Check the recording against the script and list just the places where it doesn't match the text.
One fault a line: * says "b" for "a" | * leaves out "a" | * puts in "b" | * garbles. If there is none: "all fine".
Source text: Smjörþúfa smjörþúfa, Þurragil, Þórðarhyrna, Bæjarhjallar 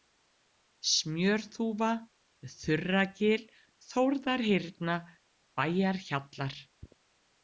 * leaves out "smjörþúfa"